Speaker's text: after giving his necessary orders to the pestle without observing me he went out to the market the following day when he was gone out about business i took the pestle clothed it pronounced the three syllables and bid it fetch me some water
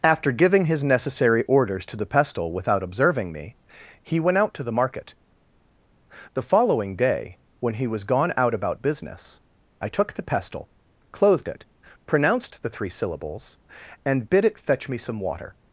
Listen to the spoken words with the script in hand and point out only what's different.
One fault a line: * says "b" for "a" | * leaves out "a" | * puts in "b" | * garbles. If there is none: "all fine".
all fine